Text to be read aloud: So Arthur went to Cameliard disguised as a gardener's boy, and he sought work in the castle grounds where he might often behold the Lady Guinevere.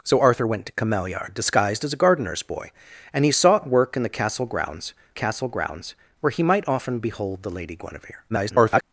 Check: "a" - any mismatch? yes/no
no